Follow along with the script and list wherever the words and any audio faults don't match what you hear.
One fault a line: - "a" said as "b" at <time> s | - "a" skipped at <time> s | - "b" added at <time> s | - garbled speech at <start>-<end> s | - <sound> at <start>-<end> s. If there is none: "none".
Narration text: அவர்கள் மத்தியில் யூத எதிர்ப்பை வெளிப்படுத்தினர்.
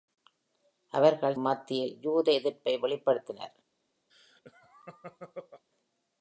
- laugh at 4.1-5.6 s